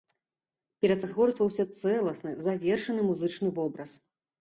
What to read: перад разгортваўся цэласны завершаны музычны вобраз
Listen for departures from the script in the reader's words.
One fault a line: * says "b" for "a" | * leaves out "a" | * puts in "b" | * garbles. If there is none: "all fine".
all fine